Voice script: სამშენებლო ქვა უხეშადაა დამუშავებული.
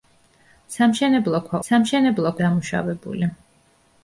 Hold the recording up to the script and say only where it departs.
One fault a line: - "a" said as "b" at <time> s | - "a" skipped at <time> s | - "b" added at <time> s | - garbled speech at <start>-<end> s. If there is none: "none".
- "უხეშადაა" said as "სამშენებლო" at 1.7 s